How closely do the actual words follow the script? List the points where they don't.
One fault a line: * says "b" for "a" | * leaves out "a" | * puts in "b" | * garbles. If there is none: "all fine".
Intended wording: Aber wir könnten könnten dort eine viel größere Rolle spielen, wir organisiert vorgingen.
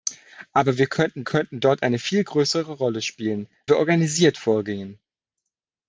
all fine